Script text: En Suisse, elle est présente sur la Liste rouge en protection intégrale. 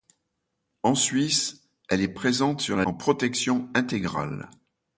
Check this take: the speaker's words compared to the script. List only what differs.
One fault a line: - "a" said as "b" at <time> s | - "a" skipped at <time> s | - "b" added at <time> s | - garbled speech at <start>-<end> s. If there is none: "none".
- "Liste rouge" skipped at 2.9 s